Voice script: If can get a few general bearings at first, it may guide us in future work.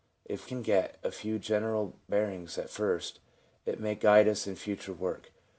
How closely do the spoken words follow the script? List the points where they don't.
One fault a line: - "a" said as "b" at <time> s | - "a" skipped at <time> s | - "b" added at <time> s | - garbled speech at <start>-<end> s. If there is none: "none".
none